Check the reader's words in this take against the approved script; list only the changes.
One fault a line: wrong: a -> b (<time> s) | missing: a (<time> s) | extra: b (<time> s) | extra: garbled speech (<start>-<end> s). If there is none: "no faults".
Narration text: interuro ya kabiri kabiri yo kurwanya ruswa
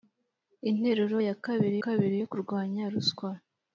no faults